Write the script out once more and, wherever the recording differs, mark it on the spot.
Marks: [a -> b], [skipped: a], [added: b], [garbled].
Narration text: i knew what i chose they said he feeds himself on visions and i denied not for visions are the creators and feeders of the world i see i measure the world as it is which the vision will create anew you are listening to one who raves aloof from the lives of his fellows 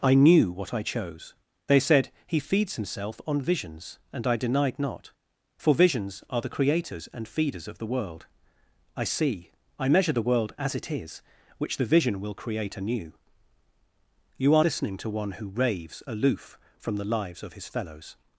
i knew what i chose they said he feeds himself on visions and i denied not for visions are the creators and feeders of the world i see i measure the world as it is which the vision will create anew you are listening to one who raves aloof from the lives of his fellows